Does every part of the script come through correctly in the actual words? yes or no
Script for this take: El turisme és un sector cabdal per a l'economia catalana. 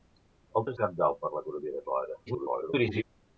no